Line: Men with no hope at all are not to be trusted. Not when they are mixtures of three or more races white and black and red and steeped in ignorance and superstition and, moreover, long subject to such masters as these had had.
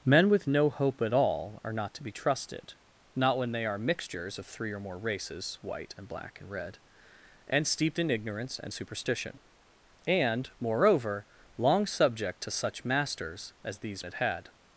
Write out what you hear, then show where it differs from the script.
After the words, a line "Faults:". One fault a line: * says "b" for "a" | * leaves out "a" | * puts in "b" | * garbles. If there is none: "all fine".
Men with no hope at all are not to be trusted. Not when they are mixtures of three or more races white and black and red and steeped in ignorance and superstition and, moreover, long subject to such masters as these had had.
Faults:
all fine